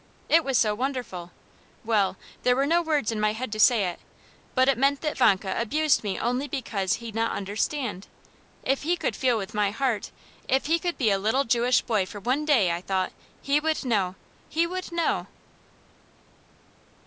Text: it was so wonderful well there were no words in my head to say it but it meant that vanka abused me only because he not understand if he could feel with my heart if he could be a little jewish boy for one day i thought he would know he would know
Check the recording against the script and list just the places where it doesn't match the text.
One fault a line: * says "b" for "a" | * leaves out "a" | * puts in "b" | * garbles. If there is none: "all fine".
all fine